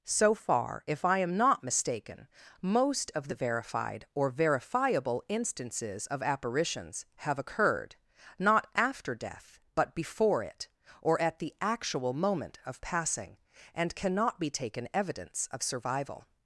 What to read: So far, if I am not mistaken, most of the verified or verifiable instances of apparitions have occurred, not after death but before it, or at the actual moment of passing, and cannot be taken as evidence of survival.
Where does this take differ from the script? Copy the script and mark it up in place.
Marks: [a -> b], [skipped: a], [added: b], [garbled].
So far, if I am not mistaken, most of the verified or verifiable instances of apparitions have occurred, not after death but before it, or at the actual moment of passing, and cannot be taken [skipped: as] evidence of survival.